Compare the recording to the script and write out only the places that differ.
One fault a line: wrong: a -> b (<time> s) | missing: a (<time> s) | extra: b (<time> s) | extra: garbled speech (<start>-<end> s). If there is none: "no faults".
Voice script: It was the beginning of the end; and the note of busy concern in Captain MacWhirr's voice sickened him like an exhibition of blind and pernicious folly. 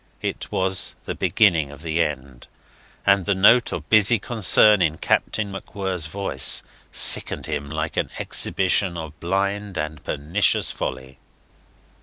no faults